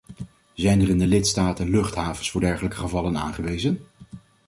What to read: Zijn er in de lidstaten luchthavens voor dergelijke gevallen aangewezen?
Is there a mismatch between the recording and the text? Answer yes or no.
no